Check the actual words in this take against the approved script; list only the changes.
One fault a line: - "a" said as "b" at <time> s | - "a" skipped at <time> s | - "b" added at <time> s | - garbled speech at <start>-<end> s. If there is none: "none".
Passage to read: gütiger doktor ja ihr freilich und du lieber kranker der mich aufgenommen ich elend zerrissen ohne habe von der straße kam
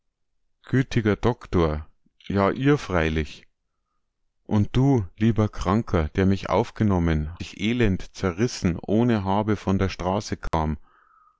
none